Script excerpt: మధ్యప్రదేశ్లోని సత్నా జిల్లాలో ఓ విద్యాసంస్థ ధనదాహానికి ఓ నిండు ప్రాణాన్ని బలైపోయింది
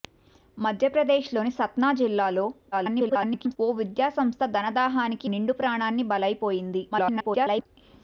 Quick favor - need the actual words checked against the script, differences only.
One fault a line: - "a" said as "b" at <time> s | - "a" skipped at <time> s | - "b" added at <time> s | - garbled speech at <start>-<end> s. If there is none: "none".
- garbled speech at 2.7-3.6 s
- "ఓ" skipped at 5.3 s
- garbled speech at 6.9-7.7 s